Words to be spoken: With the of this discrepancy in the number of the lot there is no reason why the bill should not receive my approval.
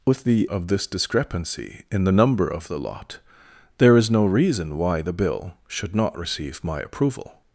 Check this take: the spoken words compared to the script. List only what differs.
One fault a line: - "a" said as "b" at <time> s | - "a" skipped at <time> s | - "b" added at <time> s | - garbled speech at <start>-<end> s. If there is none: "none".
none